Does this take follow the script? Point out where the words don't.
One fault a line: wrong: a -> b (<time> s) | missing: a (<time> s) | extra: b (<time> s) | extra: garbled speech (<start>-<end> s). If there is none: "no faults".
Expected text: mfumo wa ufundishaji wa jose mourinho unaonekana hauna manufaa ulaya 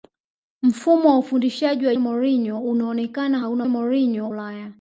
missing: jose (1.9 s)
wrong: manufaa -> mourinho (3.7 s)